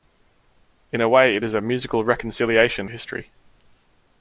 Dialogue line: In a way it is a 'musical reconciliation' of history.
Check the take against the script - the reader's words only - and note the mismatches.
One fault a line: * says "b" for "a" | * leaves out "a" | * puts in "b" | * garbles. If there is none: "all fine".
* leaves out "of"